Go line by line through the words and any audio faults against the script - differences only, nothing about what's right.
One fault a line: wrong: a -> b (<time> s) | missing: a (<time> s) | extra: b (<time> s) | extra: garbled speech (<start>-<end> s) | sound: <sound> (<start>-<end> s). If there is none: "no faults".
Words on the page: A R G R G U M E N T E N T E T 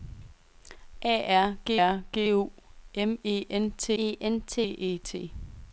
no faults